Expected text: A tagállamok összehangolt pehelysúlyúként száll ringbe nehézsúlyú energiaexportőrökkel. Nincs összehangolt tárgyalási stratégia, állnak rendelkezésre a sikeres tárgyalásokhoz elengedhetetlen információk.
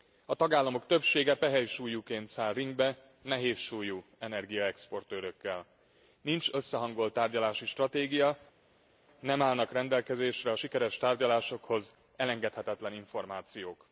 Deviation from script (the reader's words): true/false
true